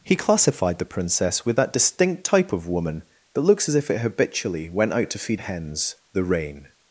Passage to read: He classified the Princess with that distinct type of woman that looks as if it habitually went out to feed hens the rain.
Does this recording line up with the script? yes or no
yes